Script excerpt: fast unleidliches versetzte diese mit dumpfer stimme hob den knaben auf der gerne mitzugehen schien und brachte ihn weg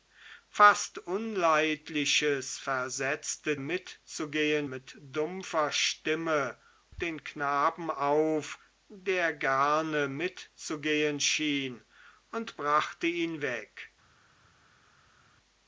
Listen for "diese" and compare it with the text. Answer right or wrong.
wrong